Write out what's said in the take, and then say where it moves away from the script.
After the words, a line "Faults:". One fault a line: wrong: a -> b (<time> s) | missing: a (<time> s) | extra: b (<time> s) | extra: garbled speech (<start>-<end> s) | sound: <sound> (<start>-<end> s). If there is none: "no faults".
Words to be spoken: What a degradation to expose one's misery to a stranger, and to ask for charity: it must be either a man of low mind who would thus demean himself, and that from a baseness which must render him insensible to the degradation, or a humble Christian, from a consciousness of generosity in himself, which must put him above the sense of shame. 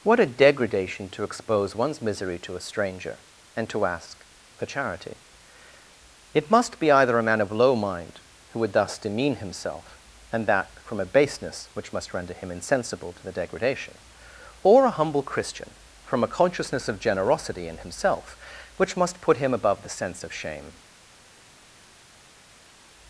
What a degradation to expose one's misery to a stranger, and to ask for charity: it must be either a man of low mind who would thus demean himself, and that from a baseness which must render him insensible to the degradation, or a humble Christian, from a consciousness of generosity in himself, which must put him above the sense of shame.
Faults:
no faults